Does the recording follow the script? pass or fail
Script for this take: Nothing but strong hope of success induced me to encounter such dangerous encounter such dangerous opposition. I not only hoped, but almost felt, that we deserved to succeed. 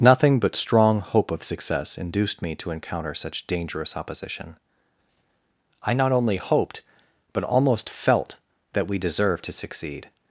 fail